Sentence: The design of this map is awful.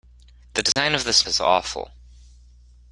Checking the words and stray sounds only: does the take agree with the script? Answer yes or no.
no